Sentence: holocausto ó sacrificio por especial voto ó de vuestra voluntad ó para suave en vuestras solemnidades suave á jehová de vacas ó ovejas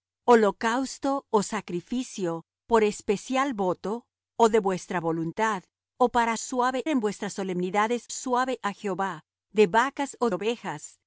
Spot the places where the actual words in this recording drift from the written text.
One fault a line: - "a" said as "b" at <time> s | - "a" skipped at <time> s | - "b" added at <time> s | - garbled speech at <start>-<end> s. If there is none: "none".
none